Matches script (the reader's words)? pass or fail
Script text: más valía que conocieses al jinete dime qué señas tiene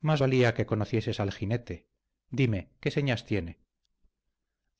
pass